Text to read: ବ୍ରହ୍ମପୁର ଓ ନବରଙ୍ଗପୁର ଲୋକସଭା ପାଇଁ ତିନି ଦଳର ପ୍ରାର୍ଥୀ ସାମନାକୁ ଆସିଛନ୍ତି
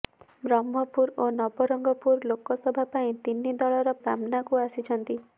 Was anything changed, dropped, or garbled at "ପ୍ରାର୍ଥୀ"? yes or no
yes